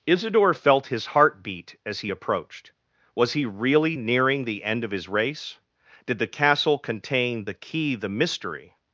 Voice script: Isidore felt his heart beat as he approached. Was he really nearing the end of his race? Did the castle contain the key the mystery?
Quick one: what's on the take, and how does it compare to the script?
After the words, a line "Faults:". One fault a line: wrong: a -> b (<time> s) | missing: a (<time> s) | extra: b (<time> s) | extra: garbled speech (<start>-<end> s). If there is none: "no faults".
Isidore felt his heart beat as he approached. Was he really nearing the end of his race? Did the castle contain the key the mystery?
Faults:
no faults